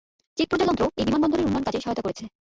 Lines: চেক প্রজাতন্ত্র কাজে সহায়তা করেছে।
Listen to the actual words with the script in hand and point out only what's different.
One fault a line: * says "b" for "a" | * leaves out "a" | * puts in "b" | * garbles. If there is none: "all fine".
* puts in "এই বিমানবন্দরের উন্নয়ন"